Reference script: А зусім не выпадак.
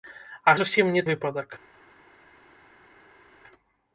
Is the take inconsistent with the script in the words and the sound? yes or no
no